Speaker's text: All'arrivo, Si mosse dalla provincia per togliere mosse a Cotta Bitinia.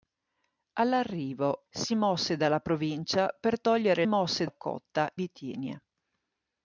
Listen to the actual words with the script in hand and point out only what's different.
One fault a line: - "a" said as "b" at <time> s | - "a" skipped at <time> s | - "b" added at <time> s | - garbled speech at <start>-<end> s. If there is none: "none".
none